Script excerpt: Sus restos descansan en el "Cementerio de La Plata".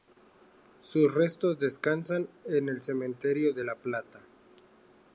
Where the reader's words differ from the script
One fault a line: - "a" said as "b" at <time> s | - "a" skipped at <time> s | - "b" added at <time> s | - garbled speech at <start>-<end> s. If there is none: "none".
none